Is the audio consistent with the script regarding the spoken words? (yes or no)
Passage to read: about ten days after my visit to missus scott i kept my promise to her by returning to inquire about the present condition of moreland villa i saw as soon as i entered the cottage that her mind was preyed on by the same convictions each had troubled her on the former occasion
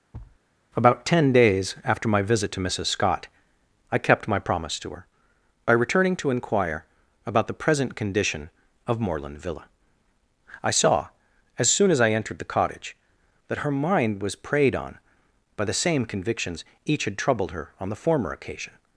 yes